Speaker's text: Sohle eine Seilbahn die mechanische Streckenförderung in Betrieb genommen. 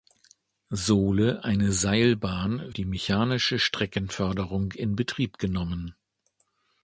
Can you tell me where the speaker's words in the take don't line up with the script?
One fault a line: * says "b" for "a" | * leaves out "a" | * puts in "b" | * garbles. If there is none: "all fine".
all fine